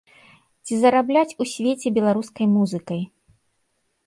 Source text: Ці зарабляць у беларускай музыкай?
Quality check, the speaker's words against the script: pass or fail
fail